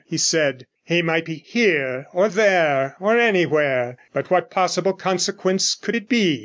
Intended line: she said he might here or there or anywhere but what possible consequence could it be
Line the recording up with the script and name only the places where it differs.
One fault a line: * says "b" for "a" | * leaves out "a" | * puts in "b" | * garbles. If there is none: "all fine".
* says "he" for "she"
* puts in "be"